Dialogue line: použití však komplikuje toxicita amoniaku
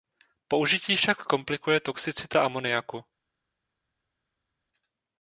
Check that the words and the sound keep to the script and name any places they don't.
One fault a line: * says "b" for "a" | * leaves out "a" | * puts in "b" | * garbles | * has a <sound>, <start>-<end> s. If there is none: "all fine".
all fine